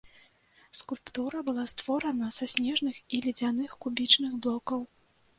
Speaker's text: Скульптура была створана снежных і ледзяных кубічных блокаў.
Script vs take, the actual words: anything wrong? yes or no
yes